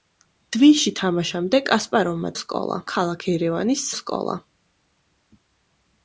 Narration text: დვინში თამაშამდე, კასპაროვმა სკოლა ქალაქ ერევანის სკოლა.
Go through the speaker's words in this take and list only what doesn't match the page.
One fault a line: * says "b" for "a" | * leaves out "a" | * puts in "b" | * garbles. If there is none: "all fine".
all fine